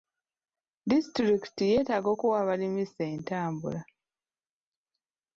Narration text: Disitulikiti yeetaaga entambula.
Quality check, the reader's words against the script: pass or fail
fail